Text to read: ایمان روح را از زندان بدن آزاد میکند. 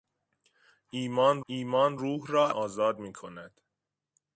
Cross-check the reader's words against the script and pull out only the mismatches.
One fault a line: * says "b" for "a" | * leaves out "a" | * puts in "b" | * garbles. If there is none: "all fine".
* puts in "ایمان"
* leaves out "از زندان بدن"